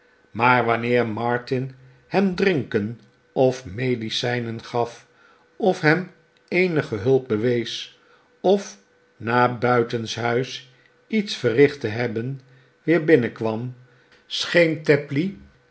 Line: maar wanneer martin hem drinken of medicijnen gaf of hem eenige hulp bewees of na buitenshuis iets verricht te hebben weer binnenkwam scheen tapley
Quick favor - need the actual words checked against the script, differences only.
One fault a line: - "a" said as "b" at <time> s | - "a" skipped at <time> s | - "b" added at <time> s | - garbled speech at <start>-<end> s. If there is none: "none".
none